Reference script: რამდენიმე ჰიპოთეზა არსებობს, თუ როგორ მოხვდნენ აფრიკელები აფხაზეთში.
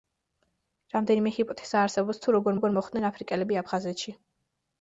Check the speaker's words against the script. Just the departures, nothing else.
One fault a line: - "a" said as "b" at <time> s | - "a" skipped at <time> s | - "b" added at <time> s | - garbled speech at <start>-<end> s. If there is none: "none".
- "როგორ" added at 2.5 s